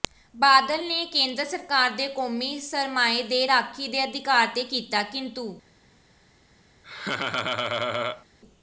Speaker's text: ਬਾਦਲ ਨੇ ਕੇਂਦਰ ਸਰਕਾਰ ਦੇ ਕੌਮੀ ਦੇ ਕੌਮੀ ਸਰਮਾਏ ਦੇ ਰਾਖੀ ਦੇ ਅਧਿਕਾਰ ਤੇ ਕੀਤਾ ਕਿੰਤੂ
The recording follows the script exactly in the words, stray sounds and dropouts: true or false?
false